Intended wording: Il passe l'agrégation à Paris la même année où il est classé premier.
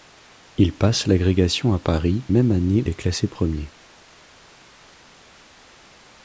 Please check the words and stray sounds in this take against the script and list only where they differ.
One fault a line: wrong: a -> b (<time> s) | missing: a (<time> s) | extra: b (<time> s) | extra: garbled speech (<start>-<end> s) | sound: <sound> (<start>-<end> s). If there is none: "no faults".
missing: la (2.2 s)
missing: où il (2.8 s)